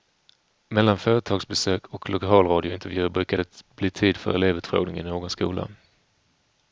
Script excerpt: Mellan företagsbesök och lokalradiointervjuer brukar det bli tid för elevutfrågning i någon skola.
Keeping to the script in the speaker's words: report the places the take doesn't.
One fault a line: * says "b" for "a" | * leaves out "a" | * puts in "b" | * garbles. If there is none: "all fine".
all fine